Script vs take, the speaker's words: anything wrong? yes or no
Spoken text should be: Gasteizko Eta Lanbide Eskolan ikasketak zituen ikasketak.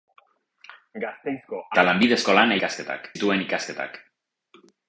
no